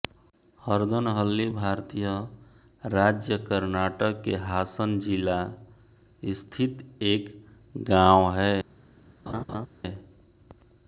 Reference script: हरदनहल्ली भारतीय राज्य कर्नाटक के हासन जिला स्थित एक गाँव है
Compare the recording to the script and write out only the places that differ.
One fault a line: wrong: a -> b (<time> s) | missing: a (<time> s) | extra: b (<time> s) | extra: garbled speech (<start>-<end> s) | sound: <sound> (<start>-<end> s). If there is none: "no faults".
sound: laugh (9.3-9.7 s)